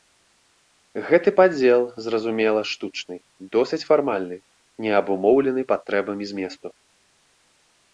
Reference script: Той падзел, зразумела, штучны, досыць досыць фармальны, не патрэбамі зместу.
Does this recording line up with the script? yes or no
no